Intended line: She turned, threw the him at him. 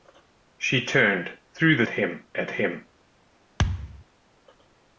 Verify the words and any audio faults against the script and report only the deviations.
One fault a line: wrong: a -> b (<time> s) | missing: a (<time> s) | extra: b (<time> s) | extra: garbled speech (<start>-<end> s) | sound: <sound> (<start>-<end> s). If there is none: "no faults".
sound: thud (3.6-4.0 s)